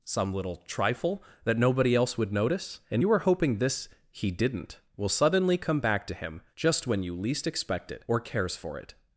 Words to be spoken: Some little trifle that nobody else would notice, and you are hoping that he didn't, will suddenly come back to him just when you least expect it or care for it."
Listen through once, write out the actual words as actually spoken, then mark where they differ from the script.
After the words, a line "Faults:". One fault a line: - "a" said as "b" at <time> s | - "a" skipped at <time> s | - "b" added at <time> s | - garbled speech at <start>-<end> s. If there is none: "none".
Some little trifle that nobody else would notice, and you are hoping this he didn't, will suddenly come back to him just when you least expect it or cares for it."
Faults:
- "that" said as "this" at 3.6 s
- "care" said as "cares" at 8.2 s